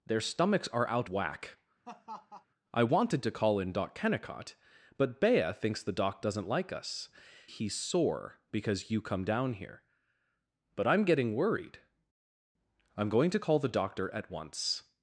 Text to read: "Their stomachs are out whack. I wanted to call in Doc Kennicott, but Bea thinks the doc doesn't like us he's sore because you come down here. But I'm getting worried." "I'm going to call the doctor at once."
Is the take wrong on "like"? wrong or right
right